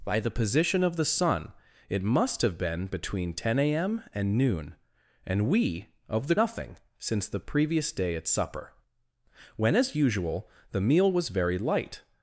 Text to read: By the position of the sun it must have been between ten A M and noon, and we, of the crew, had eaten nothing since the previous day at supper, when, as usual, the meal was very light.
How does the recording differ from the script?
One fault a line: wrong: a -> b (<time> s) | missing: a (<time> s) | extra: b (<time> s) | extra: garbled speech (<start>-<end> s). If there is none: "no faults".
missing: crew had eaten (6.3 s)